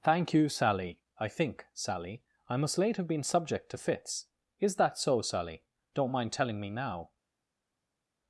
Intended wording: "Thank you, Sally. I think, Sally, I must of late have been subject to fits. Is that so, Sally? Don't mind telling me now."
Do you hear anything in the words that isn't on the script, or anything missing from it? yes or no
yes